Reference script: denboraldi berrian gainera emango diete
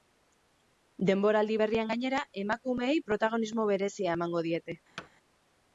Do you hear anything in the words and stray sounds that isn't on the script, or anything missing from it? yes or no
yes